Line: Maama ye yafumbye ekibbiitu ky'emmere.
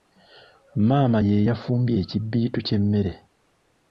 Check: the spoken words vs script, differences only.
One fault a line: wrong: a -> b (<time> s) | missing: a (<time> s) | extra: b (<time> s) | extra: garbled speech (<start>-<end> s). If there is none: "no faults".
no faults